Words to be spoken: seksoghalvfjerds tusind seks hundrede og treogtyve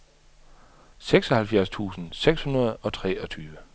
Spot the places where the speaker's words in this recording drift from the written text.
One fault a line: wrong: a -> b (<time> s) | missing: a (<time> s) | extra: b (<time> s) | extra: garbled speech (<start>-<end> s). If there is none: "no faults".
no faults